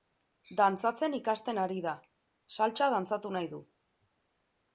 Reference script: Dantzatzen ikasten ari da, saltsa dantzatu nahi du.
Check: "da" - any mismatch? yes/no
no